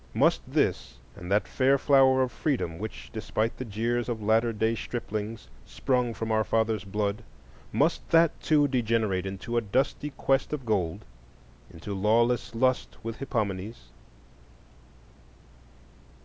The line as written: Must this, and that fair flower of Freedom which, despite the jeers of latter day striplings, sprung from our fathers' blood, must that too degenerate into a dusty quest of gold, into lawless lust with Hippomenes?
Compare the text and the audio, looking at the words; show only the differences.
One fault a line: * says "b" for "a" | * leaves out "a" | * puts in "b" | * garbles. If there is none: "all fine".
all fine